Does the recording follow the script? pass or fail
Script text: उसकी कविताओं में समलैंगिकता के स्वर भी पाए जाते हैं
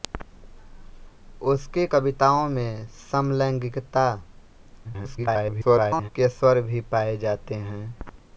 fail